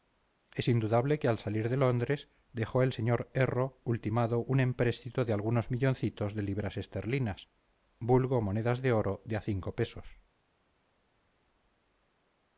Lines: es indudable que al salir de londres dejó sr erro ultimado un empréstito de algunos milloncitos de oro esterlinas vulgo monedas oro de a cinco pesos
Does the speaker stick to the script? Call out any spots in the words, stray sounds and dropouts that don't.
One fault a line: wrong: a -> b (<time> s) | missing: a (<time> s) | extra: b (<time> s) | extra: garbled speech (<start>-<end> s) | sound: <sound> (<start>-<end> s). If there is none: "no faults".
extra: el (2.8 s)
wrong: oro -> libras (6.4 s)
extra: de (8.8 s)